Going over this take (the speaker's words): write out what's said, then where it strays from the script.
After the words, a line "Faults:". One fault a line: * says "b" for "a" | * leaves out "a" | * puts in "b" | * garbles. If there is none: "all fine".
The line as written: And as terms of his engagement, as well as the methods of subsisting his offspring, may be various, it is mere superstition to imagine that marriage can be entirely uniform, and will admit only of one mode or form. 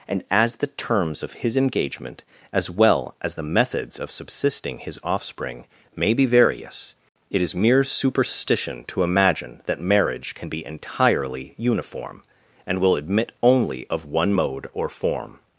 And as the terms of his engagement, as well as the methods of subsisting his offspring, may be various, it is mere superstition to imagine that marriage can be entirely uniform, and will admit only of one mode or form.
Faults:
* puts in "the"